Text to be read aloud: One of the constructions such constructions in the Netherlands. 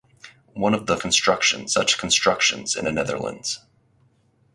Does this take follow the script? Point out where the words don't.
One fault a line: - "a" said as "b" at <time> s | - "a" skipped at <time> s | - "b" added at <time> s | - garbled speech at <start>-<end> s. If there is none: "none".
none